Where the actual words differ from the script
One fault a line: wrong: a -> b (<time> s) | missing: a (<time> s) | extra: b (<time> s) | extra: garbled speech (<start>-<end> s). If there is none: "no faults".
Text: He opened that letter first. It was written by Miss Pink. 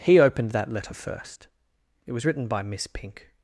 no faults